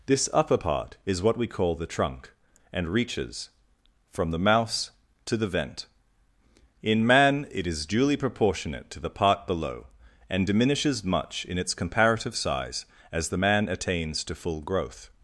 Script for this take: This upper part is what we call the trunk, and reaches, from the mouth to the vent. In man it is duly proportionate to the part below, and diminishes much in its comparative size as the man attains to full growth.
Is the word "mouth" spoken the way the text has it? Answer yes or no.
no